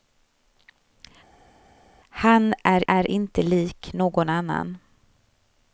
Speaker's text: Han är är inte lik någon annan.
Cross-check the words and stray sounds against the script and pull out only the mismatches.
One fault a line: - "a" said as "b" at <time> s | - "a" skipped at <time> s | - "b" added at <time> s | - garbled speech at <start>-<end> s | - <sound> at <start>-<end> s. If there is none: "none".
none